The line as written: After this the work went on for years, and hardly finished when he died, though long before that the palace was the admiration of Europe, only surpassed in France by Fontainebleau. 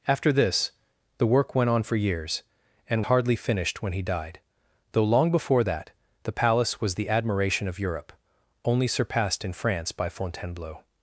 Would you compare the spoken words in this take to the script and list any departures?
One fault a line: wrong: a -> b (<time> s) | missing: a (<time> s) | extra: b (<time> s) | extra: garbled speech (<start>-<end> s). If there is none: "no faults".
no faults